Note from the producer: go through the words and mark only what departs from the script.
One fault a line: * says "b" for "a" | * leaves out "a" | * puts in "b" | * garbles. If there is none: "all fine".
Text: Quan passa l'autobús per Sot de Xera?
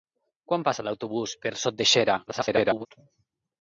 * garbles